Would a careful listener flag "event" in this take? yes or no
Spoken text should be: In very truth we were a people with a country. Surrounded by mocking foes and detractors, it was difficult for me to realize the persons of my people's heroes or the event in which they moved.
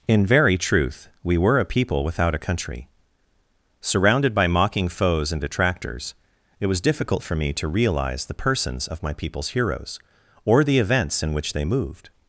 yes